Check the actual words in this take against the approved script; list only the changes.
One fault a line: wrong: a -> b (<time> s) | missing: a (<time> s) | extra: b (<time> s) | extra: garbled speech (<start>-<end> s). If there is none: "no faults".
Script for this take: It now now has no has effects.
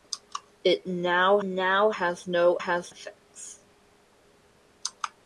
no faults